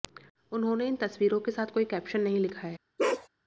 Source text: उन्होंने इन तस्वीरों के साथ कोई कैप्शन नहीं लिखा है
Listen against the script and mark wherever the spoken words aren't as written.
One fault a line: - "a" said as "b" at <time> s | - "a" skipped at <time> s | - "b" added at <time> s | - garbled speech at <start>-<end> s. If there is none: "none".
none